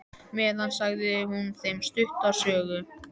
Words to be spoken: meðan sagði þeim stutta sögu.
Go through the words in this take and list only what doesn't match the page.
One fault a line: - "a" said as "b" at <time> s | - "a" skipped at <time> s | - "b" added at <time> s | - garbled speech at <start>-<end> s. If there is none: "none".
- "hún" added at 1.3 s